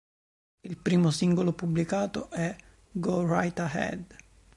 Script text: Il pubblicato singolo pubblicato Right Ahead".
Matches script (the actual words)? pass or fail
fail